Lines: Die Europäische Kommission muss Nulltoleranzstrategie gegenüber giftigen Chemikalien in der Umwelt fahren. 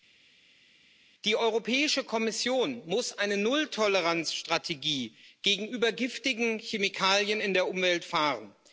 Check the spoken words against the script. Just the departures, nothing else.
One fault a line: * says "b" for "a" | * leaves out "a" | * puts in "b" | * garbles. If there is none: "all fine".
* puts in "eine"